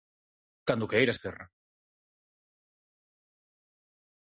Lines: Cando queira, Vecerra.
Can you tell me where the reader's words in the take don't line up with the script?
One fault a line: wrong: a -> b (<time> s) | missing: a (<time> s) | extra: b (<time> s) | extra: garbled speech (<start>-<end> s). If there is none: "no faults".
no faults